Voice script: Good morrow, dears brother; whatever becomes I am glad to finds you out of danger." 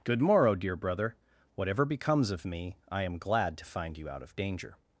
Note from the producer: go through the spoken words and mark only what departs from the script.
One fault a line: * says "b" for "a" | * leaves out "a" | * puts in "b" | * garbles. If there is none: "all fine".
* says "dear" for "dears"
* puts in "of me"
* says "find" for "finds"